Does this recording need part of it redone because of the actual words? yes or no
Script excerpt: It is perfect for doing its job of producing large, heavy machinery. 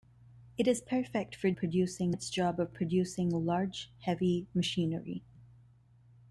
yes